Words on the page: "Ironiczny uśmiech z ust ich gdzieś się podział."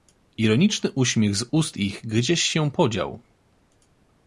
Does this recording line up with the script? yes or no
yes